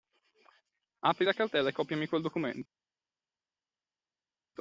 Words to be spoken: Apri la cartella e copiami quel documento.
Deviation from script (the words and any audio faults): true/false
false